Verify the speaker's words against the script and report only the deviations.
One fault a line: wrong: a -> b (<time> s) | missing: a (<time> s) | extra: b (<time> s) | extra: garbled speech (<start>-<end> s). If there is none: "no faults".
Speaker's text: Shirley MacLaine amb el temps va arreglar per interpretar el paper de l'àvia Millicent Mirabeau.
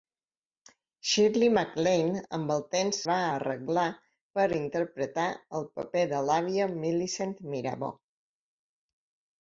no faults